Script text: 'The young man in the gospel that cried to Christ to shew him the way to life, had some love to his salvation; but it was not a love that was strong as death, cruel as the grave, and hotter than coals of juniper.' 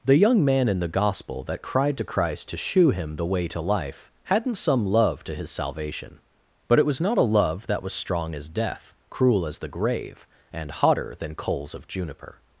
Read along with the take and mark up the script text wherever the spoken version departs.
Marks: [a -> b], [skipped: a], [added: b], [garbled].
'The young man in the gospel that cried to Christ to shew him the way to life, [had -> hadn't] some love to his salvation; but it was not a love that was strong as death, cruel as the grave, and hotter than coals of juniper.'